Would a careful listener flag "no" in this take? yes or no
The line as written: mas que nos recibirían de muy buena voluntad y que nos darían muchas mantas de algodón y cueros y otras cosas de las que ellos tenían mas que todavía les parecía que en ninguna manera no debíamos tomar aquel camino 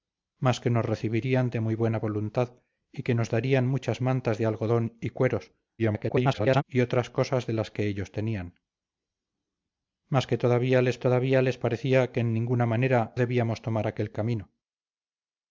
yes